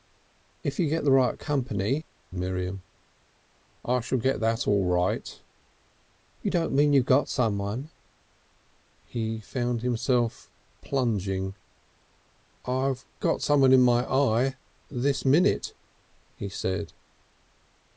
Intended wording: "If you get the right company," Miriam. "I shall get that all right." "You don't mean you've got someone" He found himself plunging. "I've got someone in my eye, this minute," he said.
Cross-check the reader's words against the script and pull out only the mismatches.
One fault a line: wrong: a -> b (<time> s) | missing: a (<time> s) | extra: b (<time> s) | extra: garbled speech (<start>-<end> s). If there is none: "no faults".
no faults